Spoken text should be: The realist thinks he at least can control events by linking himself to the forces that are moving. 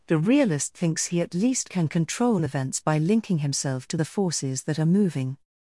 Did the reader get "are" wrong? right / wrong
right